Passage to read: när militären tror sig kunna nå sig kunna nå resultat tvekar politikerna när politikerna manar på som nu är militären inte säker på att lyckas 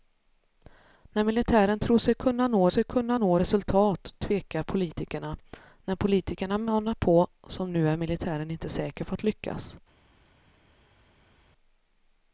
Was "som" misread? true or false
false